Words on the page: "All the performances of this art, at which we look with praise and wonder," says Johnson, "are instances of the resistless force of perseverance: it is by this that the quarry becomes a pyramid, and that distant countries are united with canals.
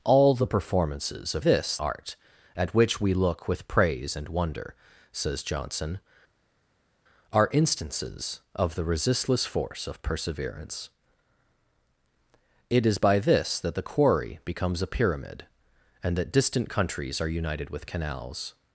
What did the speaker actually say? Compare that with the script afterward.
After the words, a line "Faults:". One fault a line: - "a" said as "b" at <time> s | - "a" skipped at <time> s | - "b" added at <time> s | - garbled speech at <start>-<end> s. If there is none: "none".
"All the performances of this art, at which we look with praise and wonder," says Johnson, "are instances of the resistless force of perseverance: it is by this that the quarry becomes a pyramid, and that distant countries are united with canals.
Faults:
none